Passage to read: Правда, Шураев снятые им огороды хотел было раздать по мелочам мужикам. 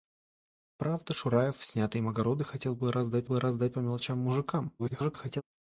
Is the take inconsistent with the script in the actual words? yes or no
yes